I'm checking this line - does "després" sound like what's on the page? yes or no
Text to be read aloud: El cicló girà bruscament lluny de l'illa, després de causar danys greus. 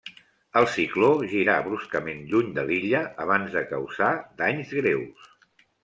no